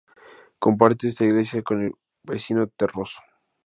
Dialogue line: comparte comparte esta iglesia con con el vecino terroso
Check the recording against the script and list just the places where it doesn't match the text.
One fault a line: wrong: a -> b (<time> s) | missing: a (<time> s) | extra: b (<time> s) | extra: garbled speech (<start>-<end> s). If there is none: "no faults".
missing: comparte (1.1 s)
missing: con (1.9 s)